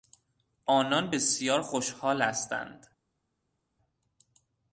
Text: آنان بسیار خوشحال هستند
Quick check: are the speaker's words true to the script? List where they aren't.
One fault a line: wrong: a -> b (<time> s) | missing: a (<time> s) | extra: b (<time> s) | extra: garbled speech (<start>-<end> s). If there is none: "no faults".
no faults